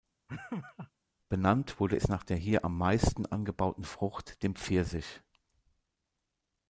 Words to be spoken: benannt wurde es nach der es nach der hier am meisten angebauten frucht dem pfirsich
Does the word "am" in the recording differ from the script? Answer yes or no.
no